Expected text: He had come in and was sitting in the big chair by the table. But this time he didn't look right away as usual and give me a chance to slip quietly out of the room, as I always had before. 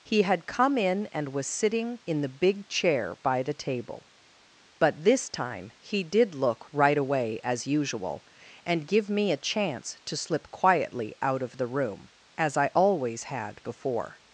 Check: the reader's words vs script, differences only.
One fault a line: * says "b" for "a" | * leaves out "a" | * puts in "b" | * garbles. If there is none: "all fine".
* says "did" for "didn't"